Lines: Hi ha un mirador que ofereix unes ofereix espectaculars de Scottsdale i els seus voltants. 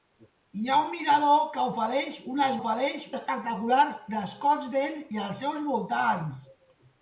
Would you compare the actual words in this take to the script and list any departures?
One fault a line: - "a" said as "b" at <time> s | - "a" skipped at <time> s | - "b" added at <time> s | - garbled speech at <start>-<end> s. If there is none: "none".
none